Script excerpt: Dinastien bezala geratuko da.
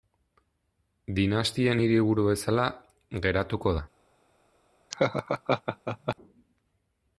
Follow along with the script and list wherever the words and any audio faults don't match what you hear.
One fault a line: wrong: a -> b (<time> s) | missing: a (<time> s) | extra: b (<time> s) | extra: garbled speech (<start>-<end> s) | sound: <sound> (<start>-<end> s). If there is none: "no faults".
extra: hiriburu (1.8 s)
sound: laugh (4.9-6.2 s)